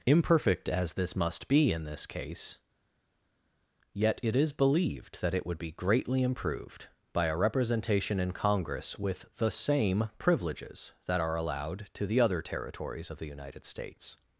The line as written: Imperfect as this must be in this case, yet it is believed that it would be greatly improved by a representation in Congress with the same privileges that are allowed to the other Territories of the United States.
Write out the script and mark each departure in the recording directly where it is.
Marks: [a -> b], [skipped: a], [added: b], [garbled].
Imperfect as this must be in this case, yet it is believed that it would be greatly improved by a representation in Congress with the same privileges that are allowed to the other Territories of the United States.